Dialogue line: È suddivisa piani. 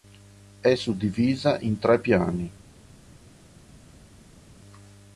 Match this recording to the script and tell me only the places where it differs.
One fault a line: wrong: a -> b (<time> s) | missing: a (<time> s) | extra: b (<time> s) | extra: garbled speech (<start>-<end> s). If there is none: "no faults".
extra: in tre (1.6 s)